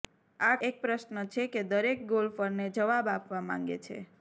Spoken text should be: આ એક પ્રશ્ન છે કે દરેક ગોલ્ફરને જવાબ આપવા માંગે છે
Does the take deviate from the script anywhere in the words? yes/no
no